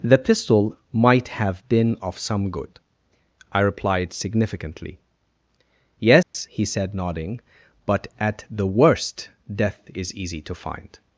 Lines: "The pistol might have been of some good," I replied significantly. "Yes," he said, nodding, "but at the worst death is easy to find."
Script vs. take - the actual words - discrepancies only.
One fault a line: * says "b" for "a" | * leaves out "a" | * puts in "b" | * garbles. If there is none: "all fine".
all fine